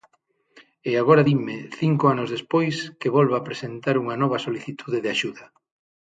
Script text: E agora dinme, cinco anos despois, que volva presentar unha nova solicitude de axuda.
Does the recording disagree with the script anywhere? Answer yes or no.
no